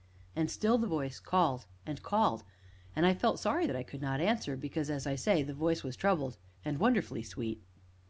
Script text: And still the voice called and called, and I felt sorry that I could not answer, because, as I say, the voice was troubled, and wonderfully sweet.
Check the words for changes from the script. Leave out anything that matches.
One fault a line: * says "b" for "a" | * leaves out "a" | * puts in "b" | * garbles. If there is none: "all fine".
all fine